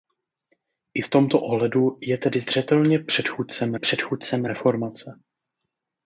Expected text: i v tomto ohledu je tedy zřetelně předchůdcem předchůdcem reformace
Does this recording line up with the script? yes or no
yes